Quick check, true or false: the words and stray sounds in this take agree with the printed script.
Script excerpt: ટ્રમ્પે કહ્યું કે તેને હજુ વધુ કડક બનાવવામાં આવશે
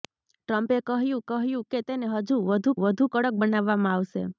false